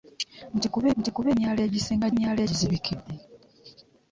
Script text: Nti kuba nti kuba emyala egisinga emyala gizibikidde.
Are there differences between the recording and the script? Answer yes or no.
no